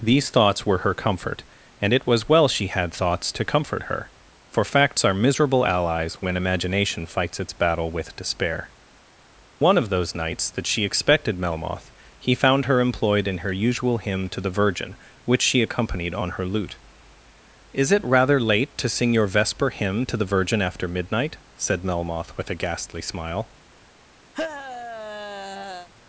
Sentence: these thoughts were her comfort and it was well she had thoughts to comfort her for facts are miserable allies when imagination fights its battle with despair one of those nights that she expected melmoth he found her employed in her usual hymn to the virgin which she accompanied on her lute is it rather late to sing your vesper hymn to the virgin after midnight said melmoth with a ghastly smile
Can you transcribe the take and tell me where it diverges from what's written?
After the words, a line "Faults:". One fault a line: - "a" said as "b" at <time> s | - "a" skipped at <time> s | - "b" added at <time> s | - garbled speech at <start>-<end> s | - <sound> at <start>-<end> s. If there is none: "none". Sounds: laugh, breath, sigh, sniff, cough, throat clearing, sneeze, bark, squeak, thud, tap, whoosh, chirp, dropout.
these thoughts were her comfort and it was well she had thoughts to comfort her for facts are miserable allies when imagination fights its battle with despair one of those nights that she expected melmoth he found her employed in her usual hymn to the virgin which she accompanied on her lute is it rather late to sing your vesper hymn to the virgin after midnight said melmoth with a ghastly smile
Faults:
- sigh at 24.3-25.9 s